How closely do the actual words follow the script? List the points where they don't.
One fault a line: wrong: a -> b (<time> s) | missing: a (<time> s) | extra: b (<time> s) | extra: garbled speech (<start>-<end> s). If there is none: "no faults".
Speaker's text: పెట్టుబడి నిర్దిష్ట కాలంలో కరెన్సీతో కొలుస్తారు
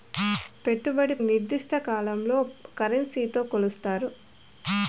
no faults